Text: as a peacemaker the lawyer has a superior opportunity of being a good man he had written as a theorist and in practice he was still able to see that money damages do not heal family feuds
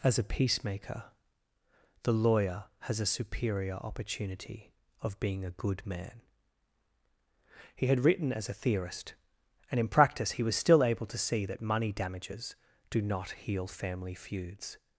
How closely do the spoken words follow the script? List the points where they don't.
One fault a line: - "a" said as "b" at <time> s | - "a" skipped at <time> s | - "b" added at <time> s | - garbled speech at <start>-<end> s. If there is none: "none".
none